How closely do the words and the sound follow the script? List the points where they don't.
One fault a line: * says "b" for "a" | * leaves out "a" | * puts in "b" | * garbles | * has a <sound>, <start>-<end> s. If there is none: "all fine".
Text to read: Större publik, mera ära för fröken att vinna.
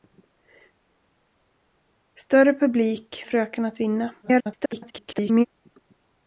* leaves out "mera ära för"
* garbles